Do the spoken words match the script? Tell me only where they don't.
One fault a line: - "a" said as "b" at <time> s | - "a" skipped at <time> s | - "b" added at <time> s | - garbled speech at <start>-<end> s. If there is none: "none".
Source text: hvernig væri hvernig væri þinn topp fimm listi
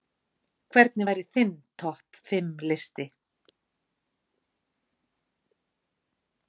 - "hvernig væri" skipped at 1.2 s